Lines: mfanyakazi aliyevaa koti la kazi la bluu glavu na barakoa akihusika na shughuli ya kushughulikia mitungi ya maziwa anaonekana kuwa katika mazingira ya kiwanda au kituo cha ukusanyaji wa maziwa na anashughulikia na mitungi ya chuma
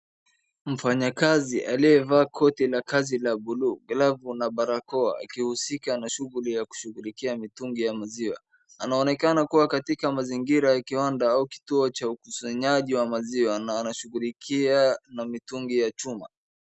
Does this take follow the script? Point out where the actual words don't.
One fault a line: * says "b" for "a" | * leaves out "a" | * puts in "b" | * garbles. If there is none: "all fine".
all fine